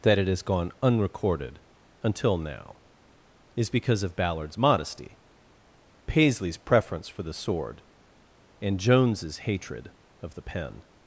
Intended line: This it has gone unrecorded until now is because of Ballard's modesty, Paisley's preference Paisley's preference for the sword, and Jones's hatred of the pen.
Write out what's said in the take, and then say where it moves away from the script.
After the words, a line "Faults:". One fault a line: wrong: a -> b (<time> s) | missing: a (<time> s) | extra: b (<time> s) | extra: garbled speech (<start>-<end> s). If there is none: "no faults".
That it has gone unrecorded until now is because of Ballard's modesty, Paisley's preference for the sword, and Jones's hatred of the pen.
Faults:
wrong: This -> That (0.0 s)
missing: Paisley's preference (7.1 s)